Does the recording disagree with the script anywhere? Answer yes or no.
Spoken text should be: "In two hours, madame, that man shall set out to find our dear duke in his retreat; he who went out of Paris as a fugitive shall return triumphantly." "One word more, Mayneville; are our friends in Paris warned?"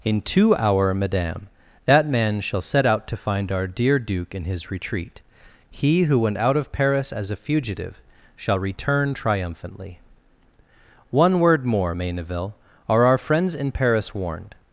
yes